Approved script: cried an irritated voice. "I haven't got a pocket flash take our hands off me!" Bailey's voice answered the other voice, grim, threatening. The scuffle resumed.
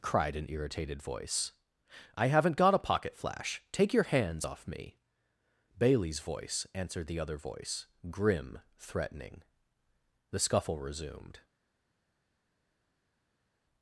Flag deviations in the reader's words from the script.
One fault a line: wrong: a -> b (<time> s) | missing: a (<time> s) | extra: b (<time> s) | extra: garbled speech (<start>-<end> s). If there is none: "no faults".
wrong: our -> your (3.9 s)